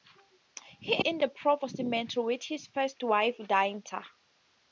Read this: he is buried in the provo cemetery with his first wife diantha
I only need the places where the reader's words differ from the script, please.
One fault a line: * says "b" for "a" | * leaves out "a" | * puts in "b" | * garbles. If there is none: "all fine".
* leaves out "is buried"